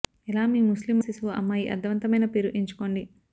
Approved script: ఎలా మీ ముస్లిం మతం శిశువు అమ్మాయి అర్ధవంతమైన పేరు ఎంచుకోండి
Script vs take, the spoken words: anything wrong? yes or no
yes